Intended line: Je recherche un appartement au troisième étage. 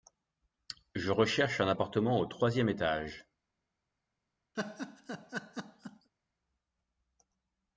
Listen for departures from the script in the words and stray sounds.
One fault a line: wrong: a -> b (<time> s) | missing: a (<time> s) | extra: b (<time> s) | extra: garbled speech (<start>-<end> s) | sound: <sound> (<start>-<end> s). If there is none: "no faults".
sound: laugh (4.5-6.1 s)